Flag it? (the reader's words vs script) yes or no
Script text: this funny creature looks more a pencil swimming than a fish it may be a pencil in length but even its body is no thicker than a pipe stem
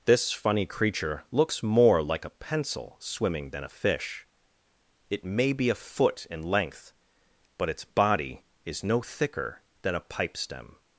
yes